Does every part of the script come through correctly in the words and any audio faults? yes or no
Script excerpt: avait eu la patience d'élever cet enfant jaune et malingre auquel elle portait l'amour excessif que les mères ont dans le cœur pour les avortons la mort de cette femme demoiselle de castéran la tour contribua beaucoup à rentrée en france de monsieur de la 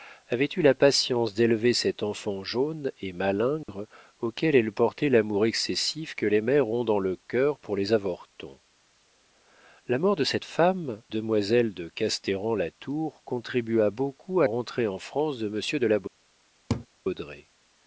no